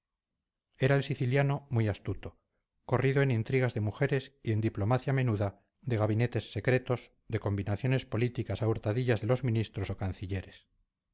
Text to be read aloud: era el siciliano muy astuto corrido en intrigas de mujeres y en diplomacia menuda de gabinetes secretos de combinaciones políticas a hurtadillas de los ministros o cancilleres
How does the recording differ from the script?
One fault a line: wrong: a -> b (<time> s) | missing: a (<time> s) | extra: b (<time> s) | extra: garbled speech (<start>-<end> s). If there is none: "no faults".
no faults